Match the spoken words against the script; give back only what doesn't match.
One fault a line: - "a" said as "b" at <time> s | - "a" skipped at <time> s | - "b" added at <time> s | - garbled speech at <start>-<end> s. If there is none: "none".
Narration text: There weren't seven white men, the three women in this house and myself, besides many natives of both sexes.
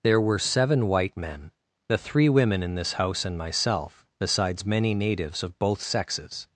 - "weren't" said as "were" at 0.2 s